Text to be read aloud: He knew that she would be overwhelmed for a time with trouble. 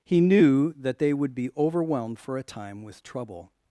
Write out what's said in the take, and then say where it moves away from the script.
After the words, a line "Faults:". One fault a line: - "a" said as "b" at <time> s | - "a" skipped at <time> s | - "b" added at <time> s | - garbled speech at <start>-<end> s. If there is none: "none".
He knew that they would be overwhelmed for a time with trouble.
Faults:
- "she" said as "they" at 1.0 s